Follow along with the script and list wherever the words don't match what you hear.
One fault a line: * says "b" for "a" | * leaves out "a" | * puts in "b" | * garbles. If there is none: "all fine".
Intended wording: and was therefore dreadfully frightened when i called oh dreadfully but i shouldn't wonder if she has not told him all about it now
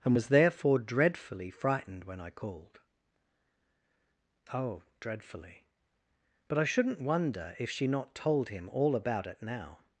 * leaves out "has"